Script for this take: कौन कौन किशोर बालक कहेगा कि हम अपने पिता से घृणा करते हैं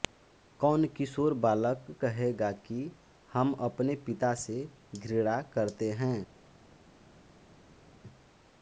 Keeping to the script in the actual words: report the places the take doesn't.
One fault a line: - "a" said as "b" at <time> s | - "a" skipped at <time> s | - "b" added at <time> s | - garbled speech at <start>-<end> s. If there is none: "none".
- "कौन" skipped at 0.8 s